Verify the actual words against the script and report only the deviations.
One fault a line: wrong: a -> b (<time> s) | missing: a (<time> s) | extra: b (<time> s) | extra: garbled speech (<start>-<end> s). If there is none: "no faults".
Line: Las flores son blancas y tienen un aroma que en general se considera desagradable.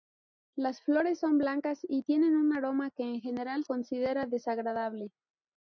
missing: se (3.6 s)